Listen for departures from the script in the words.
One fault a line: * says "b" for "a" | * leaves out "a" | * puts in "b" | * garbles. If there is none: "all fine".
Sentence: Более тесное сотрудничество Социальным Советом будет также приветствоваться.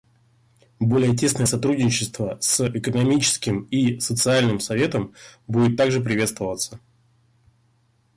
* puts in "с Экономическим и"